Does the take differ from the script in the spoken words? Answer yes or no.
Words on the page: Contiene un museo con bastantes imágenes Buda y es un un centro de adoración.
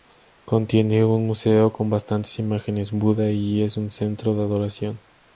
yes